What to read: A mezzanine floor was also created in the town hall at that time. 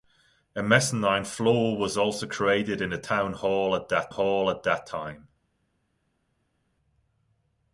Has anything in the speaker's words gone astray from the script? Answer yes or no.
yes